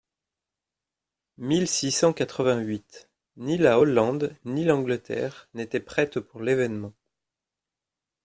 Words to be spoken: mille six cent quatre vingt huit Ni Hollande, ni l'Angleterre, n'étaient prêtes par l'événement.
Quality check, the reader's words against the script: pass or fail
fail